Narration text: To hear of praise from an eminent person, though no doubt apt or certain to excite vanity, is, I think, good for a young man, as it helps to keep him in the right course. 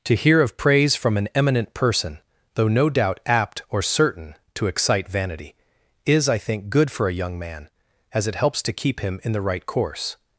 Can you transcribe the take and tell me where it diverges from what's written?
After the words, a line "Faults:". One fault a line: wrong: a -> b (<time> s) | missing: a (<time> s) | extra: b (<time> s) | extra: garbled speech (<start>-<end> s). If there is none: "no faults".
To hear of praise from an eminent person, though no doubt apt or certain to excite vanity, is, I think, good for a young man, as it helps to keep him in the right course.
Faults:
no faults